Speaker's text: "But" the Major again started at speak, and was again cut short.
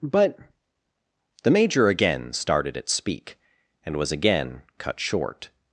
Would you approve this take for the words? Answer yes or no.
yes